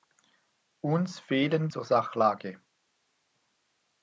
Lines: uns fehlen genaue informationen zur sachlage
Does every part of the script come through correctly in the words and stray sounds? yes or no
no